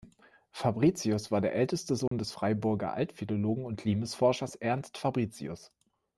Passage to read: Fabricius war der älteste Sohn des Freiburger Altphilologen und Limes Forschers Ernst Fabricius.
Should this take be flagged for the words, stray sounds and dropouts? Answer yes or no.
yes